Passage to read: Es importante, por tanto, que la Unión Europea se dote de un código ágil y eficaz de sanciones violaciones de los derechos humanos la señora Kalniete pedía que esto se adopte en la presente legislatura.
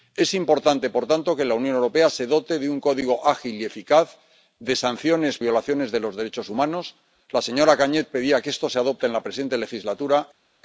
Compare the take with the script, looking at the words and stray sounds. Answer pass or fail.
pass